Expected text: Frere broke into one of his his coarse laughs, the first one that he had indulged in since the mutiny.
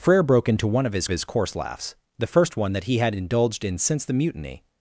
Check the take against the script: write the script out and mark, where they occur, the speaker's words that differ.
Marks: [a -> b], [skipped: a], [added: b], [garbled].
Frere broke into one of his his coarse laughs, the first one that he had indulged in since the mutiny.